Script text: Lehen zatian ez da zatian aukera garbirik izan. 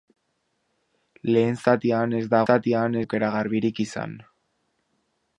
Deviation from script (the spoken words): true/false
false